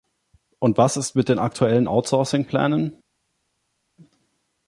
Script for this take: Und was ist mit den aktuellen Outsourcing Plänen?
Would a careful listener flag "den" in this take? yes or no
no